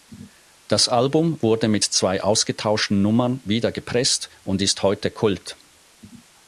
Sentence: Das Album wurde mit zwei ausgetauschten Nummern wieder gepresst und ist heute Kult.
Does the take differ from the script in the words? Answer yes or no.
no